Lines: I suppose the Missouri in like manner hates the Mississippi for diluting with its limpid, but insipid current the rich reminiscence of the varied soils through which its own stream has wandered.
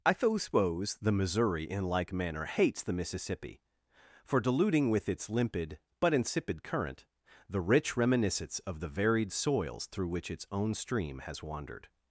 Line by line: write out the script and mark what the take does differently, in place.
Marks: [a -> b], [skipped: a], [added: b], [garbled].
I suppose the Missouri in like manner hates the Mississippi for diluting with its limpid, but insipid current the rich reminiscence of the varied soils through which its own stream has wandered.